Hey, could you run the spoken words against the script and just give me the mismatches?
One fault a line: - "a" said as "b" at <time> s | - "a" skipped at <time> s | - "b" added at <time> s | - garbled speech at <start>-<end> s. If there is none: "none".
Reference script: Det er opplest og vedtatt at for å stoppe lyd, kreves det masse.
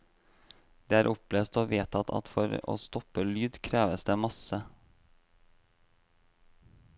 none